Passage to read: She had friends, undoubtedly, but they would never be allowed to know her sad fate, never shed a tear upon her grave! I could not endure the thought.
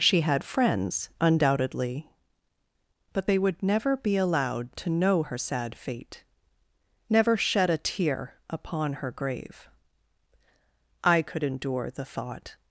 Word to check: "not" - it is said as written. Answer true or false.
false